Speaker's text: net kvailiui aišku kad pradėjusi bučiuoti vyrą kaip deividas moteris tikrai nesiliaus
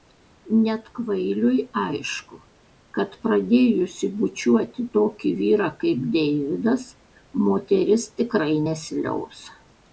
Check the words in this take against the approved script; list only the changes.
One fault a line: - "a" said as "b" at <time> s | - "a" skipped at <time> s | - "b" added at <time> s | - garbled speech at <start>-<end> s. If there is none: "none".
- "tokį" added at 5.0 s